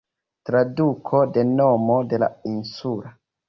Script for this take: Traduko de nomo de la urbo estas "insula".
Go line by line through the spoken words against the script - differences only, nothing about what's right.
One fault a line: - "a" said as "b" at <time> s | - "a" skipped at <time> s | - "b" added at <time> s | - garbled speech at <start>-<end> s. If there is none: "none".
- "urbo estas" skipped at 2.3 s